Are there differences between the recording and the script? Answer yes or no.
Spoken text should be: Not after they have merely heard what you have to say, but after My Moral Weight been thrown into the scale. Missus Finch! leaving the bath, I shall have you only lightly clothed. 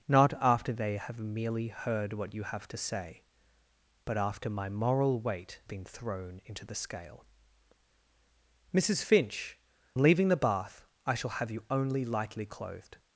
no